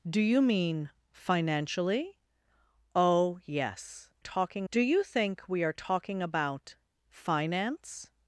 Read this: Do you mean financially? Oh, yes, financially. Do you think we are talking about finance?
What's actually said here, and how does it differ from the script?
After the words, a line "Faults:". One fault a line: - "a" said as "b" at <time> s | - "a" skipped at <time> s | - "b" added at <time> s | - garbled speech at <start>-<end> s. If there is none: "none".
Do you mean financially? Oh, yes, talking. Do you think we are talking about finance?
Faults:
- "financially" said as "talking" at 4.2 s